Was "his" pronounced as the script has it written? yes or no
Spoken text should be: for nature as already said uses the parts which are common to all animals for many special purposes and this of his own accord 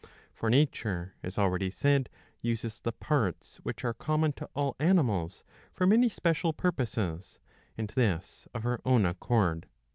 no